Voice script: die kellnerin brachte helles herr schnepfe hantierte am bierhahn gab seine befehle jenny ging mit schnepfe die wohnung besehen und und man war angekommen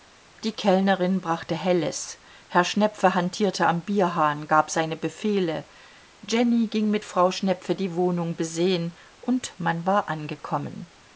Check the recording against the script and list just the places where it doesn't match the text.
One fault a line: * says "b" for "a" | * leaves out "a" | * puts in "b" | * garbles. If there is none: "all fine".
* puts in "frau"
* leaves out "und"